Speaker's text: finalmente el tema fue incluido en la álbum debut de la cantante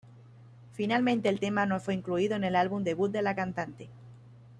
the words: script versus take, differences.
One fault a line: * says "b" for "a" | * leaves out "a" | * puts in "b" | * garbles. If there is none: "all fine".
* puts in "no"
* says "el" for "la"